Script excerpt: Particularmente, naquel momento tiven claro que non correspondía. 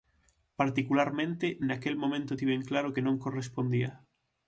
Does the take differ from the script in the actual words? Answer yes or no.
no